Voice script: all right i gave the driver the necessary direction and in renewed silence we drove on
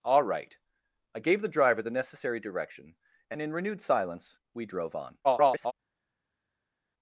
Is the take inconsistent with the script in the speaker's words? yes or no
yes